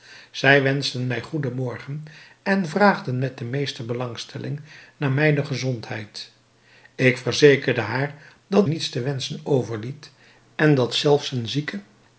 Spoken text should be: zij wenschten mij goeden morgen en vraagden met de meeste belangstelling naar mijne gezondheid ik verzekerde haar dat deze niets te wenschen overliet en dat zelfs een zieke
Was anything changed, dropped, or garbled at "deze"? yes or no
yes